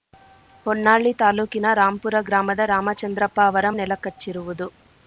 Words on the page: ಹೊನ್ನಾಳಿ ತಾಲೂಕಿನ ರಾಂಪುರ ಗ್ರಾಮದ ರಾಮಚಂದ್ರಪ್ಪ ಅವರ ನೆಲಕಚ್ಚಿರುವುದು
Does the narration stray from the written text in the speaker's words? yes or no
no